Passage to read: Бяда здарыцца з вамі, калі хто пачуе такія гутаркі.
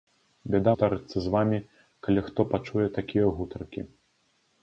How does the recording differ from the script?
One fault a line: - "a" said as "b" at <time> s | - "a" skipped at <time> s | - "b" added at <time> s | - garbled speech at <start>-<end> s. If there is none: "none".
none